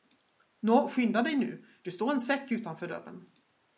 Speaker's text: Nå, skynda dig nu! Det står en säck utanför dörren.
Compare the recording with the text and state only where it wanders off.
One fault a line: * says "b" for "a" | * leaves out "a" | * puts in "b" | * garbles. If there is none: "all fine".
all fine